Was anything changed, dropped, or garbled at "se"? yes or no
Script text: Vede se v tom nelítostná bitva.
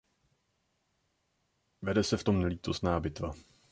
no